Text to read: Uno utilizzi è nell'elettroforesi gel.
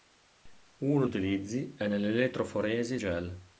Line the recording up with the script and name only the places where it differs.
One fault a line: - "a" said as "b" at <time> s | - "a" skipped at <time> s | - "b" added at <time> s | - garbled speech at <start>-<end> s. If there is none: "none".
none